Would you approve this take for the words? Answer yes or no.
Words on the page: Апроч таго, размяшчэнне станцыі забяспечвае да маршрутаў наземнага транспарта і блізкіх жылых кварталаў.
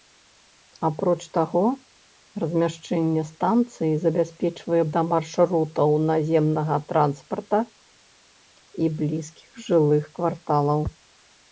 yes